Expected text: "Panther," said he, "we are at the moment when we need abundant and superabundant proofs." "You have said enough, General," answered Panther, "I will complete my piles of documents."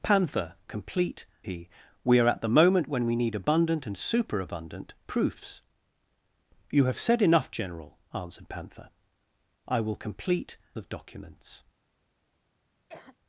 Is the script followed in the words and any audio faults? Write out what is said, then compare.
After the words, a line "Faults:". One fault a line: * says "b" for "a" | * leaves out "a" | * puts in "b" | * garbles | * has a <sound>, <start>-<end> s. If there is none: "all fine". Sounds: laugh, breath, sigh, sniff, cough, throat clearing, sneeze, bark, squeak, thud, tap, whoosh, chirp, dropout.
"Panther," complete he, "we are at the moment when we need abundant and superabundant proofs." "You have said enough, General," answered Panther, "I will complete of documents."
Faults:
* says "complete" for "said"
* leaves out "my piles"
* has a cough, 12.9-13.2 s